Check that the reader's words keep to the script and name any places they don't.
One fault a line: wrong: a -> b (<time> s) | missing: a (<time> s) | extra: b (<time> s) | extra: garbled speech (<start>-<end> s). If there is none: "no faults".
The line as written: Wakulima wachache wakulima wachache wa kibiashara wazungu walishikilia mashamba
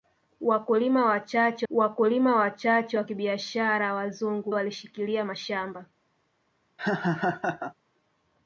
no faults